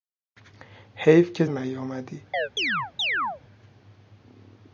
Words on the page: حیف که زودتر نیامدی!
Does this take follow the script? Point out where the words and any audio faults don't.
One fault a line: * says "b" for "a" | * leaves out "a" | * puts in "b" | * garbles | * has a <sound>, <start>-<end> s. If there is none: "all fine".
* leaves out "زودتر"
* has a chirp, 2.3-3.4 s